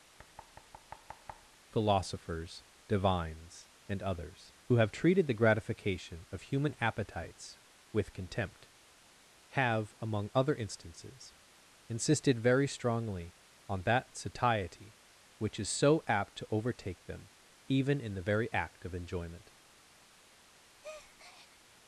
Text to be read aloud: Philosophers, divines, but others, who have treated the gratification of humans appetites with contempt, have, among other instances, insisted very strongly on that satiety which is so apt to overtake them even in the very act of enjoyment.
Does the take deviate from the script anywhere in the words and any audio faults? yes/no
yes